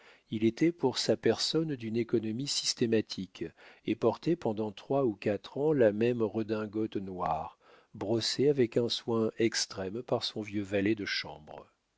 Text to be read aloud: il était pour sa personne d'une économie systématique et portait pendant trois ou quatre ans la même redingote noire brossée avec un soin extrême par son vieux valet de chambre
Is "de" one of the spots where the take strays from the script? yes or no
no